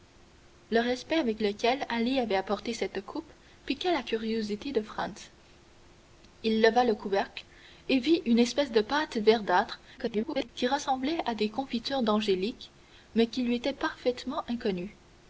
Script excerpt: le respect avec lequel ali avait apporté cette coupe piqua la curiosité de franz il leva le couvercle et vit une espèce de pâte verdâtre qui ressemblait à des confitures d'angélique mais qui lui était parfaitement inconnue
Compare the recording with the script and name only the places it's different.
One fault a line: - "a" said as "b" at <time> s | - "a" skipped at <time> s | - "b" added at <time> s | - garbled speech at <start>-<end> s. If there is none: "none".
- garbled speech at 10.0-10.5 s